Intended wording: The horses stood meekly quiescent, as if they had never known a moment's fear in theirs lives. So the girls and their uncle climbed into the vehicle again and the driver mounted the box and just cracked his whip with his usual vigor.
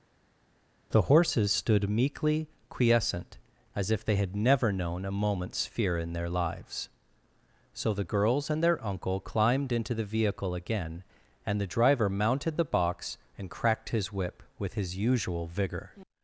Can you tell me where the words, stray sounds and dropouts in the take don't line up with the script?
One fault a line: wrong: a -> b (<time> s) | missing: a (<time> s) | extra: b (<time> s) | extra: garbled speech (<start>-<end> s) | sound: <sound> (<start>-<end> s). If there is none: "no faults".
wrong: theirs -> their (6.1 s)
missing: just (13.5 s)